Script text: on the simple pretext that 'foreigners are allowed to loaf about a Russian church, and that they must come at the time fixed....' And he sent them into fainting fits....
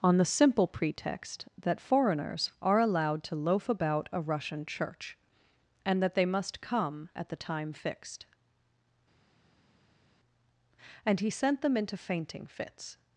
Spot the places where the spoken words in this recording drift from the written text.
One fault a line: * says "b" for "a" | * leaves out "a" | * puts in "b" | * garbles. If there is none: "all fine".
all fine